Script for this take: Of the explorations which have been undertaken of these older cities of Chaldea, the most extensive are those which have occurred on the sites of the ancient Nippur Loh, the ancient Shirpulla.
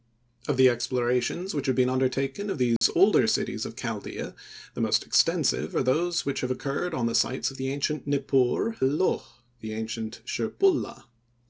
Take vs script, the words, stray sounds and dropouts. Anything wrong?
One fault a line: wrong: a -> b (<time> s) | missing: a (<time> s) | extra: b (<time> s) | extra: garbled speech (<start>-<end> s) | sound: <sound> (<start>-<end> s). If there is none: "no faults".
sound: dropout (2.8-2.8 s)